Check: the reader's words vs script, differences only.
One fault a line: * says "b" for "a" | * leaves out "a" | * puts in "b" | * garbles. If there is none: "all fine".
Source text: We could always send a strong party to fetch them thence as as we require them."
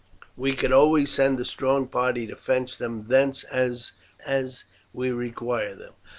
all fine